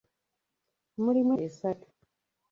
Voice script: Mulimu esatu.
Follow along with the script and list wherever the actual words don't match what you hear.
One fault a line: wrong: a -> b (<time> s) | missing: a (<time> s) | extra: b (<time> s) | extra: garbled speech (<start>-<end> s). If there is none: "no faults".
no faults